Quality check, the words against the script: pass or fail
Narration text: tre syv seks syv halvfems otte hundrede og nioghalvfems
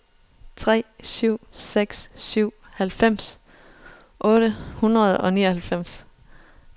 pass